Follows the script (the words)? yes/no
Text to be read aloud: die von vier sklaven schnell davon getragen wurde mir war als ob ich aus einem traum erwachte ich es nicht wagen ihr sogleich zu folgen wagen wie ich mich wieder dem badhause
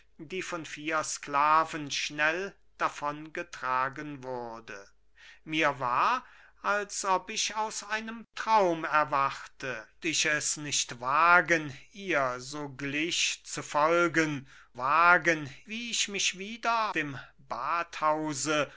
yes